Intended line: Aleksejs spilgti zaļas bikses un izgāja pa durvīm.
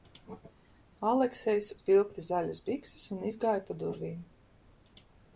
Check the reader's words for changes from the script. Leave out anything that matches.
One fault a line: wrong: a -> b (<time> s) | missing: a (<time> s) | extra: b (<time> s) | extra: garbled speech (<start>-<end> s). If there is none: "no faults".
no faults